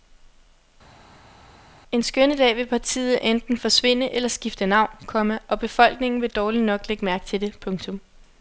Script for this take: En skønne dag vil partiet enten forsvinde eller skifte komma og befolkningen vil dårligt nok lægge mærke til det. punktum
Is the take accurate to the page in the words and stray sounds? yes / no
no